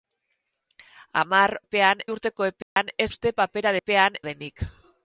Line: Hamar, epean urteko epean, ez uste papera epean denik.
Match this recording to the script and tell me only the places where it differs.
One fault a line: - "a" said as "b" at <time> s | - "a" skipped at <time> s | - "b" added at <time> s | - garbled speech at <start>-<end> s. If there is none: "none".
none